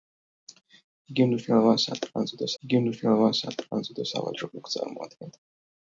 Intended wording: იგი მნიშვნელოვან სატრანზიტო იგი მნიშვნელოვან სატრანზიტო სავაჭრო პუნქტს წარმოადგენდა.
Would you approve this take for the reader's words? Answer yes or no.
yes